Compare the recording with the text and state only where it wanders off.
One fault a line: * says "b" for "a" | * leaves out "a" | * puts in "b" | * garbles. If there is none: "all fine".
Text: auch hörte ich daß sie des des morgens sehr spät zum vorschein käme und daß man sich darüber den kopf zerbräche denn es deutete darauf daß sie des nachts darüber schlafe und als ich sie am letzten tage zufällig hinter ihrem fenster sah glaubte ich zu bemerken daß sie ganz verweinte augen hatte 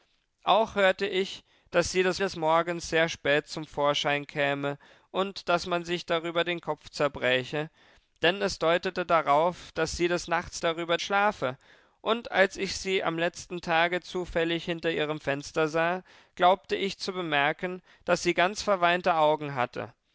all fine